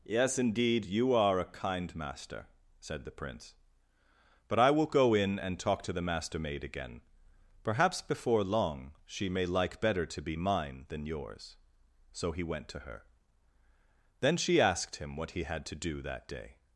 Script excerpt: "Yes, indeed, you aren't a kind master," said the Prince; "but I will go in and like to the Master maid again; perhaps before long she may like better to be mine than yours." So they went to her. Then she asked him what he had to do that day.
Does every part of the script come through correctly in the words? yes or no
no